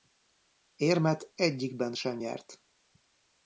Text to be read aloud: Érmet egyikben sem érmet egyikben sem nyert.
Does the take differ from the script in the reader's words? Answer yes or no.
yes